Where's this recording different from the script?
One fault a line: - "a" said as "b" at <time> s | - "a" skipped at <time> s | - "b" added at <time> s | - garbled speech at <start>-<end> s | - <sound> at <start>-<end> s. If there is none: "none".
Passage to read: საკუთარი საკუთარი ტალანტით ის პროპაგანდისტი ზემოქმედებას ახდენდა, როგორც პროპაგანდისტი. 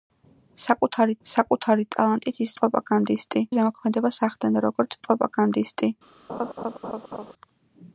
- laugh at 6.3-7.3 s